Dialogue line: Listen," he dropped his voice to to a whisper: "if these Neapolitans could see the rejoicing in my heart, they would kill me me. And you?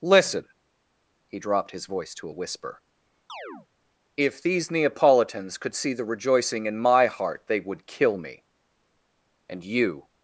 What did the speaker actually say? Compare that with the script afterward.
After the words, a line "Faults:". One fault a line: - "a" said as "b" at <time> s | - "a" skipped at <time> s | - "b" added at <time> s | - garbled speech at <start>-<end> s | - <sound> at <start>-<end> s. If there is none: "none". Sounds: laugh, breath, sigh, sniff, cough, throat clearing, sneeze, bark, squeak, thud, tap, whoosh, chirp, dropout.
Listen," he dropped his voice to a whisper: "if these Neapolitans could see the rejoicing in my heart, they would kill me. And you?
Faults:
- "to" skipped at 2.3 s
- chirp at 3.3-3.7 s
- "me" skipped at 8.5 s